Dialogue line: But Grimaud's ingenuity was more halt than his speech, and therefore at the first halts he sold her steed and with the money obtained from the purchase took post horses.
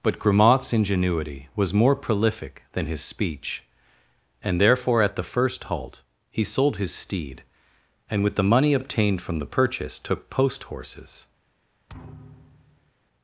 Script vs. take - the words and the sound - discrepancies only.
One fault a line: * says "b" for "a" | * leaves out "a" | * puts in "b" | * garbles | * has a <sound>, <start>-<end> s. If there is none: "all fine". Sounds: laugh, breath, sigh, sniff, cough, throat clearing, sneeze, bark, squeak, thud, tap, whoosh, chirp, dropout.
* says "prolific" for "halt"
* says "halt" for "halts"
* says "his" for "her"
* has a thud, 11.9-12.9 s